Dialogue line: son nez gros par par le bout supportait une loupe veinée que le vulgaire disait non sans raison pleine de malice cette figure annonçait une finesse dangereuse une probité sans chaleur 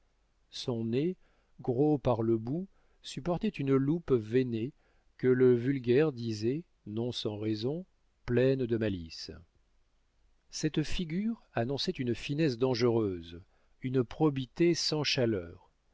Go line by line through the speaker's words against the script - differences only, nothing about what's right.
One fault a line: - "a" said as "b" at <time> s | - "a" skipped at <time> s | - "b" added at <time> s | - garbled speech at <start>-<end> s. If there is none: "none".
- "par" skipped at 2.2 s